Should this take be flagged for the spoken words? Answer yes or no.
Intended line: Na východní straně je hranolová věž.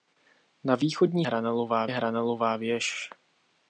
yes